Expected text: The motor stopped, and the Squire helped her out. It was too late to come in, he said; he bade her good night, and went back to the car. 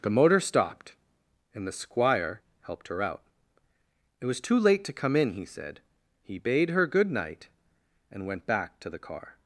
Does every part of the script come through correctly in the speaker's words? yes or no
yes